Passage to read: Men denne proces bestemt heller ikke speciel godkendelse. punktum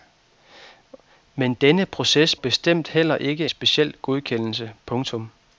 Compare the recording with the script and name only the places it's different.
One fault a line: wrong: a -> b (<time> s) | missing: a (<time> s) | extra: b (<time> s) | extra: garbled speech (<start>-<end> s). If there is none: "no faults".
no faults